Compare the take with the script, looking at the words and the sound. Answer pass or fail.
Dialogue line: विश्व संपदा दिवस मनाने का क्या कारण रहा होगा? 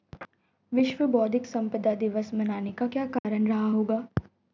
fail